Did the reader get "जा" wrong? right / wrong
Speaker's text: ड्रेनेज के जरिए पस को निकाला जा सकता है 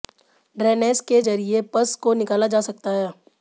right